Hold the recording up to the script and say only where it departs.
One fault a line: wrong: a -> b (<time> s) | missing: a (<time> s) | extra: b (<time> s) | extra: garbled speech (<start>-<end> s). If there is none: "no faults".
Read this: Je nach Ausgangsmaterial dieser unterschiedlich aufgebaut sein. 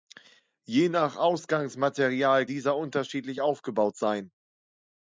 no faults